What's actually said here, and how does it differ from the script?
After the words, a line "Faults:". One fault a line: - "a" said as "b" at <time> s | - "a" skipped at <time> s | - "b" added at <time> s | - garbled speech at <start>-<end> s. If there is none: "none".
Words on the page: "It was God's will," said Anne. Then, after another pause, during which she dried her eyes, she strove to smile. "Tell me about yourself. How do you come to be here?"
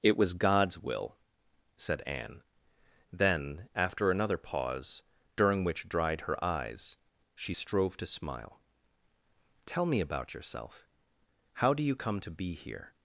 "It was God's will," said Anne. Then, after another pause, during which dried her eyes, she strove to smile. "Tell me about yourself. How do you come to be here?"
Faults:
- "she" skipped at 5.9 s